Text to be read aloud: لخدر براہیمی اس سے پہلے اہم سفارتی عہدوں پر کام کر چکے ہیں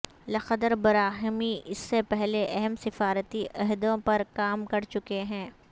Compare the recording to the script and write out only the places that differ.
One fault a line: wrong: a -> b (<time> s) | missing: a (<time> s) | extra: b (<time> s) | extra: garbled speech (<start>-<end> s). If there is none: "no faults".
no faults